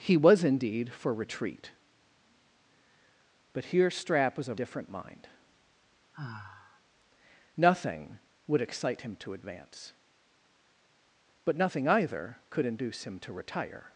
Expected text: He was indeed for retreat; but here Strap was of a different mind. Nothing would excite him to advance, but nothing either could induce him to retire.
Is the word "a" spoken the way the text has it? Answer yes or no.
no